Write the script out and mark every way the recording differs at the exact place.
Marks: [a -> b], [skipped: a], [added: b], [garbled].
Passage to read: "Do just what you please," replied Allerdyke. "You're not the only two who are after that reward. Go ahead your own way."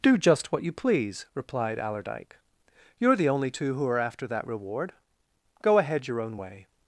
"Do just what you please," replied Allerdyke. "You're [skipped: not] the only two who are after that reward. Go ahead your own way."